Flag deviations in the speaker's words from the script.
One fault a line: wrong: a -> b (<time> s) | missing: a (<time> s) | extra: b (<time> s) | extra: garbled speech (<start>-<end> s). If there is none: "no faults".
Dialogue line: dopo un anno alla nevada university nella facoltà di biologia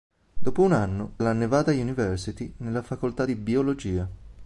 no faults